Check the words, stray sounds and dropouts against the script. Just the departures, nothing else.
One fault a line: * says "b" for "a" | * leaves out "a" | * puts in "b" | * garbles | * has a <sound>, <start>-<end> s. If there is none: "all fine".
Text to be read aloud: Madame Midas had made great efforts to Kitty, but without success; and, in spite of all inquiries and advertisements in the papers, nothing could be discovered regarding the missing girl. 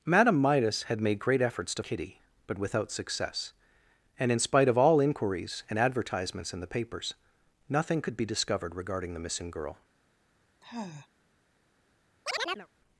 * has a sigh, 10.6-11.1 s
* has a chirp, 12.3-12.7 s